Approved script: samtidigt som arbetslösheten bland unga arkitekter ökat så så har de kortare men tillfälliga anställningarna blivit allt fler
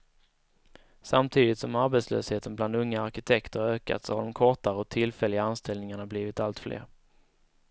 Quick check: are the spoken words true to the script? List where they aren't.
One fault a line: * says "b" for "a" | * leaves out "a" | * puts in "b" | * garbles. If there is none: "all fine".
* leaves out "så"
* says "och" for "men"